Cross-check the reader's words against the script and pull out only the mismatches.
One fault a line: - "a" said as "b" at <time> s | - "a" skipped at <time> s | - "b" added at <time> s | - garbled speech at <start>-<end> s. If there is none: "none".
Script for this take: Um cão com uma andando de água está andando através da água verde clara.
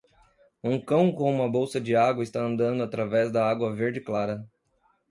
- "andando" said as "bolsa" at 1.5 s